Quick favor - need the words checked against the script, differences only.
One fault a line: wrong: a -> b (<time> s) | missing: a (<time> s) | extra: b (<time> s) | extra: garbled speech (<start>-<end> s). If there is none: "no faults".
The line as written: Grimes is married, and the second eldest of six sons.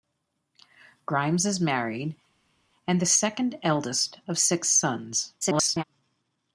extra: garbled speech (5.4-5.8 s)